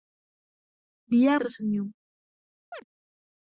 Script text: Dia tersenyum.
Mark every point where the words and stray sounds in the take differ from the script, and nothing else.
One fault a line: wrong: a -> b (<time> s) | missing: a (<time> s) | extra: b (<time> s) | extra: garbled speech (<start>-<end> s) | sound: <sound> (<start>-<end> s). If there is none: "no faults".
sound: chirp (2.7-2.8 s)